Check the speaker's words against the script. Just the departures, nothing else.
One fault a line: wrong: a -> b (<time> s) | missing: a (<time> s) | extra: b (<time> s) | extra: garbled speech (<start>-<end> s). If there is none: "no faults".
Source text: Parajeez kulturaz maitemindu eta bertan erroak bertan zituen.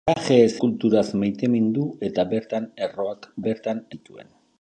no faults